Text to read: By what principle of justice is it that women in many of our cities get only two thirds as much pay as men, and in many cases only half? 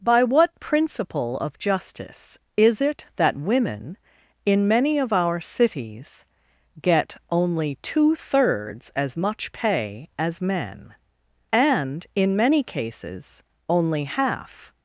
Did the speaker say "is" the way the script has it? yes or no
yes